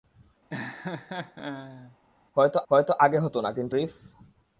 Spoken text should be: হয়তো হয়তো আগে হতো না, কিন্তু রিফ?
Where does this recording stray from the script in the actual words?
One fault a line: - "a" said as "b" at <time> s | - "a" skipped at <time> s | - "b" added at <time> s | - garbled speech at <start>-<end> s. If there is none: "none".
none